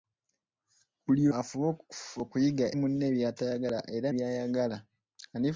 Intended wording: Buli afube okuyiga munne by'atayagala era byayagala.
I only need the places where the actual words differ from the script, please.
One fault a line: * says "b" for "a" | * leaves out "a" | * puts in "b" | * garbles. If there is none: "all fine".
all fine